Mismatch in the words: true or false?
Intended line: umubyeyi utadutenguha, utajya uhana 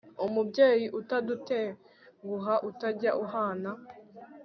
false